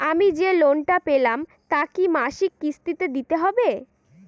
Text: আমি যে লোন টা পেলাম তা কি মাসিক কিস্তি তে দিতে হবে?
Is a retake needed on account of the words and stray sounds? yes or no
no